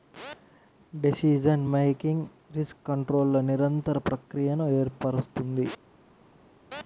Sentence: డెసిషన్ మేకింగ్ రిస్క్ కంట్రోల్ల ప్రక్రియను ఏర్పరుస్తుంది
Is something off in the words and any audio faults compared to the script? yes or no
yes